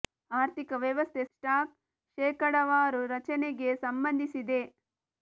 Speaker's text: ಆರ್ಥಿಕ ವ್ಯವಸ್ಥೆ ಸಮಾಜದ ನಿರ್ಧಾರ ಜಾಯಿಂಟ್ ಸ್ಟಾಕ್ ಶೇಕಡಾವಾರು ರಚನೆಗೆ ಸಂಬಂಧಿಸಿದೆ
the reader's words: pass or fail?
fail